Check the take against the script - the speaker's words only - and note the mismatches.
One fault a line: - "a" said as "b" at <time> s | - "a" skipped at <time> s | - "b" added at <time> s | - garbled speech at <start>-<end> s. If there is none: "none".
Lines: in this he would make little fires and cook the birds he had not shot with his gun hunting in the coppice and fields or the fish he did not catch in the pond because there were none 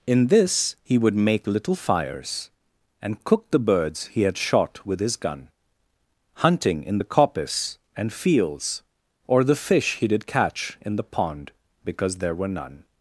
- "not" skipped at 4.4 s
- "not" skipped at 10.3 s